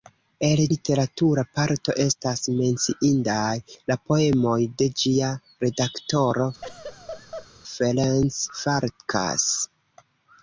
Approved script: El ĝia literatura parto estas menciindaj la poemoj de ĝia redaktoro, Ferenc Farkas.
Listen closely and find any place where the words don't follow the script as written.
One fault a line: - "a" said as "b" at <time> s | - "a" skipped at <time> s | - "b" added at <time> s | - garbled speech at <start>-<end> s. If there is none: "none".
- "ĝia" skipped at 0.6 s